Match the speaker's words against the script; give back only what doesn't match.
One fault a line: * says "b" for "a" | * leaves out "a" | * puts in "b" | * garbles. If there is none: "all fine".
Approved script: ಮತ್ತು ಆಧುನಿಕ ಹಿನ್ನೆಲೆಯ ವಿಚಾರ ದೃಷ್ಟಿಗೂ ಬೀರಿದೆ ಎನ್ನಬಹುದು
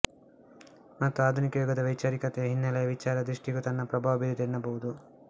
* puts in "ಯುಗದ ವೈಚಾರಿಕತೆಯ"
* puts in "ತನ್ನ ಪ್ರಭಾವ"